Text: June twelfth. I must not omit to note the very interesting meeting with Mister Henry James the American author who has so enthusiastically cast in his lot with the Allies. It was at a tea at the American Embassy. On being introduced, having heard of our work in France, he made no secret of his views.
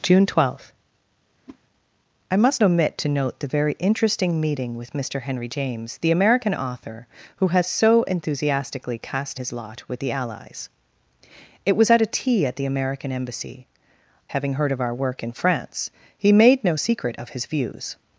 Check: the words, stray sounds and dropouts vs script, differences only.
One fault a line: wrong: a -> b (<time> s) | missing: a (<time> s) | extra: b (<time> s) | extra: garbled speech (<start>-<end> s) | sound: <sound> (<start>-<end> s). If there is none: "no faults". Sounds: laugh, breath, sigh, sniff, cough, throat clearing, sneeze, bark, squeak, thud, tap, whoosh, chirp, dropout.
sound: whoosh (1.5-1.6 s)
missing: not (2.6 s)
missing: in (9.4 s)
missing: On being introduced (13.6 s)